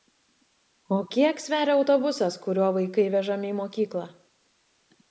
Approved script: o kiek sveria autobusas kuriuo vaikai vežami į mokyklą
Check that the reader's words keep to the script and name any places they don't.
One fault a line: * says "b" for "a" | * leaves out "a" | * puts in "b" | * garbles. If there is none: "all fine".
all fine